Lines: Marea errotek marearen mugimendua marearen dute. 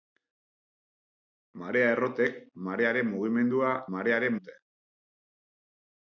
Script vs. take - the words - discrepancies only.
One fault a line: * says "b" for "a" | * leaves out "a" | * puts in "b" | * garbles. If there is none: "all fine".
all fine